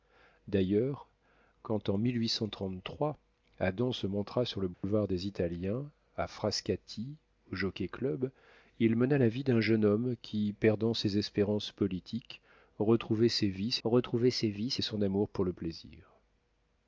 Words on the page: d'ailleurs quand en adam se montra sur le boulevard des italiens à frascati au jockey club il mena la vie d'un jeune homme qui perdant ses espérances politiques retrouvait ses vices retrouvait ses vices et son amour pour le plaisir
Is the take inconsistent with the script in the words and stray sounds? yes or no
yes